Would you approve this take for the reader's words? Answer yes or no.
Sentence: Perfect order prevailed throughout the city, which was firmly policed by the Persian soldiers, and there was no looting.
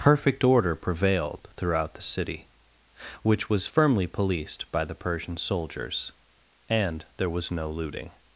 yes